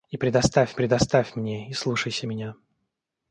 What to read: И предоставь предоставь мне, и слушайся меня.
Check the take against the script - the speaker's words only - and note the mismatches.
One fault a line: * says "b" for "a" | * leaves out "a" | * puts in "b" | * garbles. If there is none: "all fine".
all fine